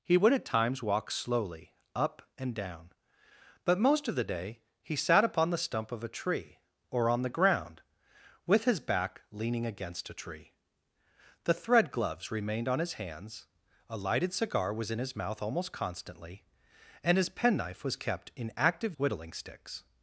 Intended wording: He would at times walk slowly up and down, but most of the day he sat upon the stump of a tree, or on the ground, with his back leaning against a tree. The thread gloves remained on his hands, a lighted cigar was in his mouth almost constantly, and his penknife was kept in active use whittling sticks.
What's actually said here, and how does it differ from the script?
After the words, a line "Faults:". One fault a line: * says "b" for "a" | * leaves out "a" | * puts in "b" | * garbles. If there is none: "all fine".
He would at times walk slowly up and down, but most of the day he sat upon the stump of a tree, or on the ground, with his back leaning against a tree. The thread gloves remained on his hands, a lighted cigar was in his mouth almost constantly, and his penknife was kept in active whittling sticks.
Faults:
* leaves out "use"